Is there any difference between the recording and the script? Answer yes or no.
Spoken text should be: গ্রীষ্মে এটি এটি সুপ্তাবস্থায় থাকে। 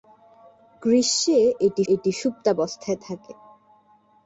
no